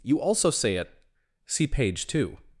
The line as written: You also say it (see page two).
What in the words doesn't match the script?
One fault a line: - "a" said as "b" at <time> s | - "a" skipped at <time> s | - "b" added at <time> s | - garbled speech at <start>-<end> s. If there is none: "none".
none